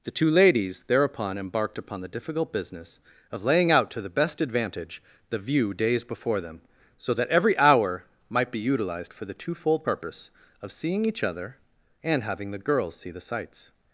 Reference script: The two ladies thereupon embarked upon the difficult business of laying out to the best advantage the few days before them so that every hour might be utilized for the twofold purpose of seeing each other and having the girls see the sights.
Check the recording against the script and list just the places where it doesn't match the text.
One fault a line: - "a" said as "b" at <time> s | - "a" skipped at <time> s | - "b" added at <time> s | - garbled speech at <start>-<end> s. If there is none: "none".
- "few" said as "view" at 5.4 s